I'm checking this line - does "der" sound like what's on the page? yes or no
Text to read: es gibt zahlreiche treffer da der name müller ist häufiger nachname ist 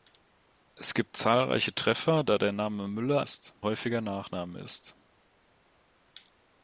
yes